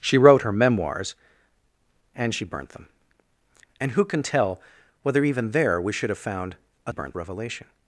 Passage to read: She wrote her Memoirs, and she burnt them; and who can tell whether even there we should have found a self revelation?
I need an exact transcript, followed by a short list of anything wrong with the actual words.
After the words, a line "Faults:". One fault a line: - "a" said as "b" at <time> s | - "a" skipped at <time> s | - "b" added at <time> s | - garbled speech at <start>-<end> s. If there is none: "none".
She wrote her Memoirs, and she burnt them; and who can tell whether even there we should have found a burnt revelation?
Faults:
- "self" said as "burnt" at 6.9 s